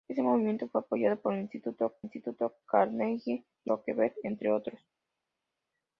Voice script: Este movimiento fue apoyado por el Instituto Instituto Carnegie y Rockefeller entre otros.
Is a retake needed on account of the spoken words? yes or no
no